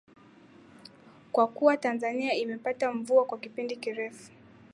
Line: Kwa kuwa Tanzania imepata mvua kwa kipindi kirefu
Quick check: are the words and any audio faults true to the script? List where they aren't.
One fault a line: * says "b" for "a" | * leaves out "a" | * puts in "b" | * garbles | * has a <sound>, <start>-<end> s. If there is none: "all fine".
all fine